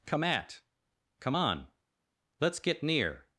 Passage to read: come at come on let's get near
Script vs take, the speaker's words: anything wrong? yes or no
no